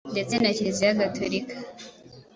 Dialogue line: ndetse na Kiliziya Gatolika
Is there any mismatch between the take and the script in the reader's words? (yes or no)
no